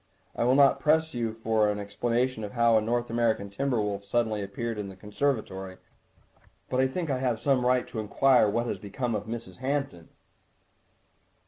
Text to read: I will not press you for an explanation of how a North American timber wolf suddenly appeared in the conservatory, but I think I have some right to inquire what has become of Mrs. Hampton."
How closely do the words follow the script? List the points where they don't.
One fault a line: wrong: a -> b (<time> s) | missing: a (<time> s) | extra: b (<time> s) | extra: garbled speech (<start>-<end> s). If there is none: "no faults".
no faults